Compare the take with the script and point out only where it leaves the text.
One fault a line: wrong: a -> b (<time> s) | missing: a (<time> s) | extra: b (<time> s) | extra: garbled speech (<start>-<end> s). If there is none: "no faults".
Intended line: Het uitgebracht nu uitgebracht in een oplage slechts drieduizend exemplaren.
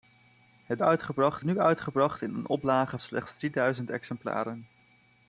no faults